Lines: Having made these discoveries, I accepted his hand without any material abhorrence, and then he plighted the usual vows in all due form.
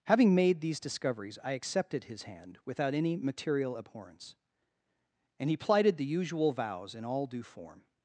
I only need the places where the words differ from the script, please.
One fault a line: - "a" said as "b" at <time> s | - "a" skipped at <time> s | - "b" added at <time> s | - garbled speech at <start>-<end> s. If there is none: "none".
- "then" skipped at 5.5 s